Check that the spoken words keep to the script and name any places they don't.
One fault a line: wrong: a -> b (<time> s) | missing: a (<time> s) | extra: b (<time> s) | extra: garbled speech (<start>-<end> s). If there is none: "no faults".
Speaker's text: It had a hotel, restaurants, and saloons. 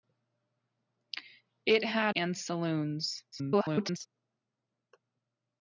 missing: a hotel restaurants (2.1 s)
extra: garbled speech (3.3-4.1 s)